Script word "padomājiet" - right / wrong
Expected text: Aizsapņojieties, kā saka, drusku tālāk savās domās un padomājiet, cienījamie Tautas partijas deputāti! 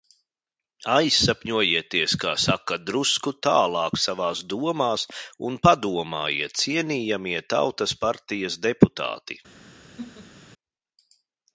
right